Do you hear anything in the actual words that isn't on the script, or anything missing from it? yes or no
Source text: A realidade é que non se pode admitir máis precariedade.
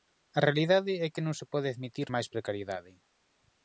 no